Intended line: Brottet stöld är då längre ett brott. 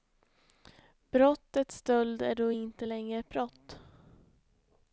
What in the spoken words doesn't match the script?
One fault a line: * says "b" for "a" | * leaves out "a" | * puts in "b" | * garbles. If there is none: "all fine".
* puts in "inte"